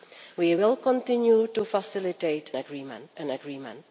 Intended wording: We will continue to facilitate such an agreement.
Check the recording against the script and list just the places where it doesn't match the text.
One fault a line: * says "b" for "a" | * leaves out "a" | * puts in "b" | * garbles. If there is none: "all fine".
* says "agreement" for "such"